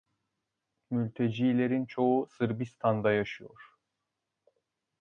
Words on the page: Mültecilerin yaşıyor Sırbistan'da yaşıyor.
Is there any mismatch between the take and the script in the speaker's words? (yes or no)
yes